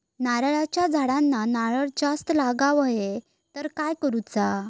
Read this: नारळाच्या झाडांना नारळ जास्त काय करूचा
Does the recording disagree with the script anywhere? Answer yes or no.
yes